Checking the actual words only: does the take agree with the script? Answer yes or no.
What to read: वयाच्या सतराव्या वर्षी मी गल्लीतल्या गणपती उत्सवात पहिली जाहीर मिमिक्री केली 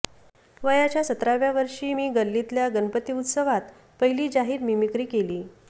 yes